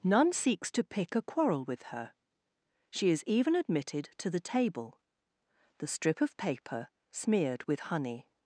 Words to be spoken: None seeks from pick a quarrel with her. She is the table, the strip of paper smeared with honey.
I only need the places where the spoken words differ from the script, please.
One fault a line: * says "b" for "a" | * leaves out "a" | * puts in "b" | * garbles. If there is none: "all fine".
* says "to" for "from"
* puts in "even admitted to"